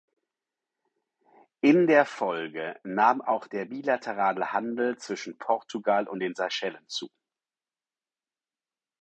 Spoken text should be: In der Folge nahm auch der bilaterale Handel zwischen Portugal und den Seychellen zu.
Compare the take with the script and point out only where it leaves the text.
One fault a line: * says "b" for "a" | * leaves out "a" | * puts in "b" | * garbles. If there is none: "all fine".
all fine